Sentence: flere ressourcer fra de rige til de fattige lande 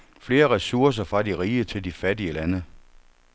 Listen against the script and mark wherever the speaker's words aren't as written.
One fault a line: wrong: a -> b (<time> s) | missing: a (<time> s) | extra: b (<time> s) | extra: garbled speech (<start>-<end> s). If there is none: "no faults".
no faults